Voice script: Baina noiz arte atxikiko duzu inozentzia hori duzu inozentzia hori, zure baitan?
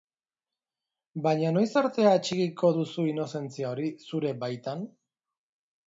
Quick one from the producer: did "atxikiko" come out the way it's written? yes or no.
yes